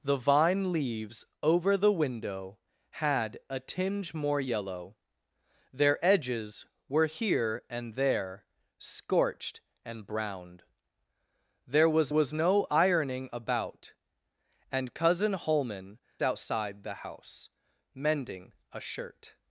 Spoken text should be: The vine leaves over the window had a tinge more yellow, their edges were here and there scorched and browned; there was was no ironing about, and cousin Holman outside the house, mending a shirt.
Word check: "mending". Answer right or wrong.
right